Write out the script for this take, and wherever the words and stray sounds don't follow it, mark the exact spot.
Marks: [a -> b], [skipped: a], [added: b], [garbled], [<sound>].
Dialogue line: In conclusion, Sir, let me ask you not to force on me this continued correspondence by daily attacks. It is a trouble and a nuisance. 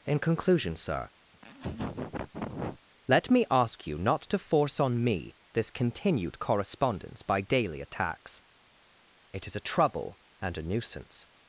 In conclusion, Sir, [laugh] let me ask you not to force on me this continued correspondence by daily attacks. It is a trouble and a nuisance.